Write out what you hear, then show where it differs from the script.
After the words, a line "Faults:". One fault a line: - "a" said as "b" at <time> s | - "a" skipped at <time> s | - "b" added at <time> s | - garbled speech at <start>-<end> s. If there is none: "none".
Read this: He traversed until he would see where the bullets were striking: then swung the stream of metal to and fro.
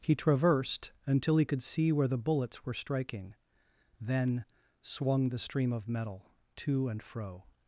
He traversed until he could see where the bullets were striking: then swung the stream of metal to and fro.
Faults:
- "would" said as "could" at 1.4 s